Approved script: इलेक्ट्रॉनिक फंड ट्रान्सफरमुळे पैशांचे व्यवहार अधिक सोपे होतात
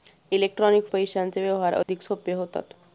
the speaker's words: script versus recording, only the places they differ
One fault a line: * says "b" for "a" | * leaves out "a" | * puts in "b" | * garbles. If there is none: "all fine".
* leaves out "फंड ट्रान्सफरमुळे"